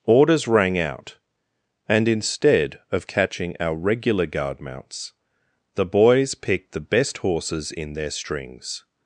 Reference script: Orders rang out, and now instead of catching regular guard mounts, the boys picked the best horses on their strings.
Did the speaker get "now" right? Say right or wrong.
wrong